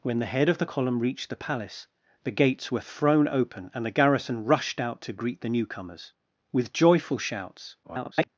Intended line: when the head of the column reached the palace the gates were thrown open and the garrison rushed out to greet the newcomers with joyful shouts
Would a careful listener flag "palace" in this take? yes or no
no